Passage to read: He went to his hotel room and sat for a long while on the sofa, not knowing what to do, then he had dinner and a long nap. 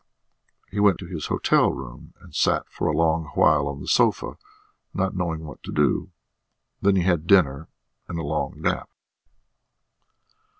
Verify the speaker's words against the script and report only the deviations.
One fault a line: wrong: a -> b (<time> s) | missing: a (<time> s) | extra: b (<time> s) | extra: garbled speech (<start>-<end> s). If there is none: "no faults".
no faults